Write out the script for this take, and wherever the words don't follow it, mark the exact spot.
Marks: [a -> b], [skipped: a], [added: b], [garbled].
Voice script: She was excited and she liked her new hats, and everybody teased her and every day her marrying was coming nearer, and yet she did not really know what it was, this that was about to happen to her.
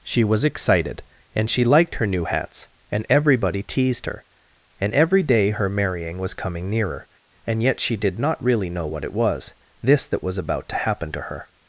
She was excited and she liked her new hats, and everybody teased her and every day her marrying was coming nearer, and yet she did not really know what it was, this that was about to happen to her.